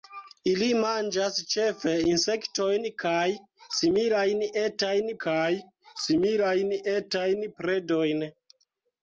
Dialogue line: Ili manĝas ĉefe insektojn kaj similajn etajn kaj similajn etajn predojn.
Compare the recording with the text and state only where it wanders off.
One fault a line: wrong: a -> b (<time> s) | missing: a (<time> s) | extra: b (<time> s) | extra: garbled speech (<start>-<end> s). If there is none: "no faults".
no faults